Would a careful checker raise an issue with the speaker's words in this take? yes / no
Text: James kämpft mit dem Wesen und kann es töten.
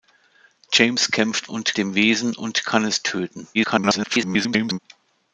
yes